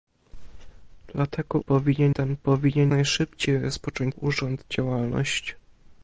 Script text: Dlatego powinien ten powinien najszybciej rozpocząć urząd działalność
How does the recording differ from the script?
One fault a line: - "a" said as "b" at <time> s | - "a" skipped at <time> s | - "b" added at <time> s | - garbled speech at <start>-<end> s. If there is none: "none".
none